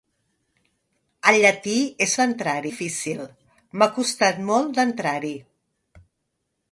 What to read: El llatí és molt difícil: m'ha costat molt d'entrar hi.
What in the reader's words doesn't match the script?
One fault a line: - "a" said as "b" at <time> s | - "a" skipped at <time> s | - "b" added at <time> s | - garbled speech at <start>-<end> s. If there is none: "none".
- "molt" said as "d'entrar" at 2.2 s